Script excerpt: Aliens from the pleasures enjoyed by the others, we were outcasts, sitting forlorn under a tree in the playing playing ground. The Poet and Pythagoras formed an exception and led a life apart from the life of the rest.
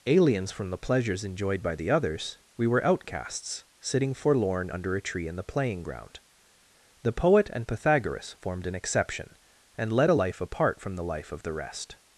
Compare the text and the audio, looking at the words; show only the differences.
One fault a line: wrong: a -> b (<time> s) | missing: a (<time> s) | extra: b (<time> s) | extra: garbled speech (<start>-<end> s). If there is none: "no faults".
missing: playing (5.8 s)